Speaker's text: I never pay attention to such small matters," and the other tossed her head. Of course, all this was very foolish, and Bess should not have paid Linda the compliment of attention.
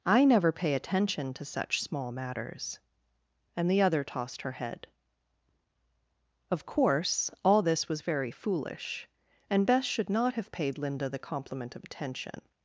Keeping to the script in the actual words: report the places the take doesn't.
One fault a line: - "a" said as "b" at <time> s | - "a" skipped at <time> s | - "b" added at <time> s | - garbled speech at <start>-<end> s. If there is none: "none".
none